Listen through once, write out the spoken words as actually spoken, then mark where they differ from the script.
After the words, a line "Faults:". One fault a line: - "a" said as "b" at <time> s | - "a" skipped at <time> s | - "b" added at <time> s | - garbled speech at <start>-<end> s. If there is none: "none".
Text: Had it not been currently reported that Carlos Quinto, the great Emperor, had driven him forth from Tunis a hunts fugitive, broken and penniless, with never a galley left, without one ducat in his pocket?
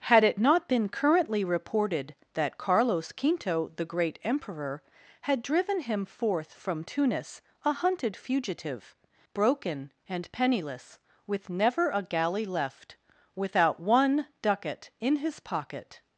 Had it not been currently reported that Carlos Quinto, the great Emperor, had driven him forth from Tunis a hunted fugitive, broken and penniless, with never a galley left, without one ducat in his pocket?
Faults:
- "hunts" said as "hunted" at 7.7 s